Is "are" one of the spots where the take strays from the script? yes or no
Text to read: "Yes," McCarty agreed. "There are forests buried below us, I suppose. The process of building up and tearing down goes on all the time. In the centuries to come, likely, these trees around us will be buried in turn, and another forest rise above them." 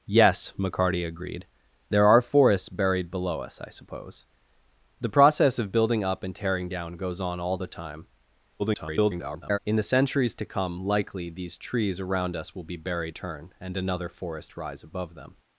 no